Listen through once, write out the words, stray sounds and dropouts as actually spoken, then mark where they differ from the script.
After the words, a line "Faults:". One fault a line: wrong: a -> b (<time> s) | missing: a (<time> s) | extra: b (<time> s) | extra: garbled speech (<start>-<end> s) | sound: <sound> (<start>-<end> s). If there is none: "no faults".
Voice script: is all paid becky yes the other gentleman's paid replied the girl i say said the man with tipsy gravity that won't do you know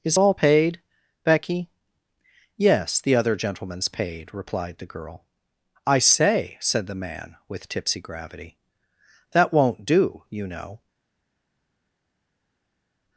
is all paid becky yes the other gentleman's paid replied the girl i say said the man with tipsy gravity that won't do you know
Faults:
no faults